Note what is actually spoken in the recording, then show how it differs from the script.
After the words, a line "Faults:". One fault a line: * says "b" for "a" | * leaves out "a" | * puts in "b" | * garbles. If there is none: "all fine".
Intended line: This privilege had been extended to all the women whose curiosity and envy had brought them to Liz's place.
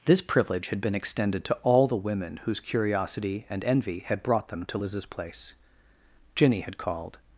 This privilege had been extended to all the women whose curiosity and envy had brought them to Liz's place. Jinny had called
Faults:
* puts in "Jinny had called"